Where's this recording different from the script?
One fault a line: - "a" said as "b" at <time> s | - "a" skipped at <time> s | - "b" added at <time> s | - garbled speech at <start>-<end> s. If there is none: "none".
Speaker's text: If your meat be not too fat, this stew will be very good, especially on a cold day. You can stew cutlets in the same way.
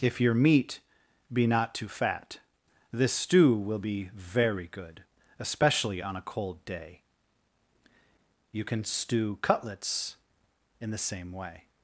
none